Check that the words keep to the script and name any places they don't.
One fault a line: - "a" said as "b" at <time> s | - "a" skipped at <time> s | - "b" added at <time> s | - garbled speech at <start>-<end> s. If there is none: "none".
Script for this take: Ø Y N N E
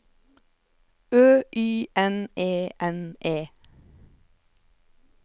- "E" added at 2.4 s